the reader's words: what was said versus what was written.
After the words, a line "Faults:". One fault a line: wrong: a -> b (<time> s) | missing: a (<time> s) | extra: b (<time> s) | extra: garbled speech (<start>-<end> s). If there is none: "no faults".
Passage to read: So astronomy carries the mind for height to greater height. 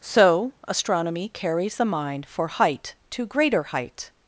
So astronomy carries the mind for height to greater height.
Faults:
no faults